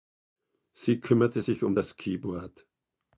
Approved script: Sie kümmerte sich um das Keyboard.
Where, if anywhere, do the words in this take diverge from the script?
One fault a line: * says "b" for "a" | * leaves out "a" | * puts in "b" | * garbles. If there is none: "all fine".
all fine